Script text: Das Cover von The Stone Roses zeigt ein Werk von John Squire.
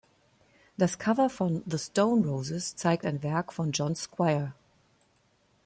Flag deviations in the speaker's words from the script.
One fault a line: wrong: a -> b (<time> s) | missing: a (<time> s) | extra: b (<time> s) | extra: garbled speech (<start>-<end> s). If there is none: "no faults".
no faults